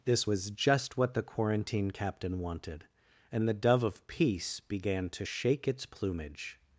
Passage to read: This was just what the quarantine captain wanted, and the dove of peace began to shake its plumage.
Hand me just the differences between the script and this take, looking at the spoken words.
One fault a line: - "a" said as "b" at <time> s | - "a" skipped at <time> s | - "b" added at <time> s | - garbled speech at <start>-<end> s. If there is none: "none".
none